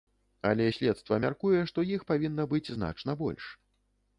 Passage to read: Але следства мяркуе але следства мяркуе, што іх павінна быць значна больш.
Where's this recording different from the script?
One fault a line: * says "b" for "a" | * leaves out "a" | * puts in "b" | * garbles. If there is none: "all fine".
* leaves out "але следства мяркуе"